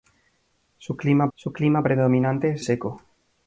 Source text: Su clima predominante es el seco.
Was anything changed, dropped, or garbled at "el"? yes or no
yes